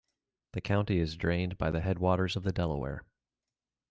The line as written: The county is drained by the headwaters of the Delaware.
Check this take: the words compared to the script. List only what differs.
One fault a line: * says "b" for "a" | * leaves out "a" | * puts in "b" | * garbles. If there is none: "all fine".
all fine